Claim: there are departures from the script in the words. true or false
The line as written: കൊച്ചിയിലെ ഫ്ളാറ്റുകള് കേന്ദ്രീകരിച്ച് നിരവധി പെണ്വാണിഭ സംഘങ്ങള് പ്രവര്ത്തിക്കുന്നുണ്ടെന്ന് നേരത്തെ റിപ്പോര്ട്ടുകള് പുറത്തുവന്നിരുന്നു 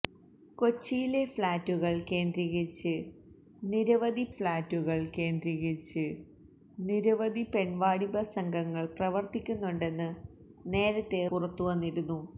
true